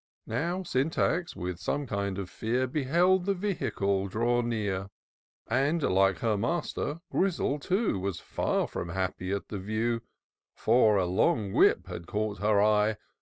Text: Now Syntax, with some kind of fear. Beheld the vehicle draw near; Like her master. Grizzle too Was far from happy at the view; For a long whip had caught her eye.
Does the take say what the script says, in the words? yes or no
no